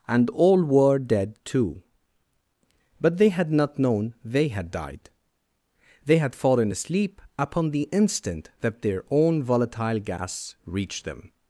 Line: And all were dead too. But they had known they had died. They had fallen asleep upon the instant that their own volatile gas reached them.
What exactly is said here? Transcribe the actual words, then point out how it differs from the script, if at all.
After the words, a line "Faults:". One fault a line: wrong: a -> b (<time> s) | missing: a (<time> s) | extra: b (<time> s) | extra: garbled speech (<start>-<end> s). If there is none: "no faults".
And all were dead too. But they had not known they had died. They had fallen asleep upon the instant that their own volatile gas reached them.
Faults:
extra: not (3.5 s)